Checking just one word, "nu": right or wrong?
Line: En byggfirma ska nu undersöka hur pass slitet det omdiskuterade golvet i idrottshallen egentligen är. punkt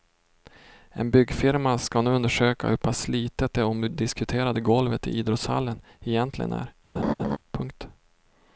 right